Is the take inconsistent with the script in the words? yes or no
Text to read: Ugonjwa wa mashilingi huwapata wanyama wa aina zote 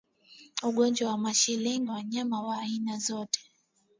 yes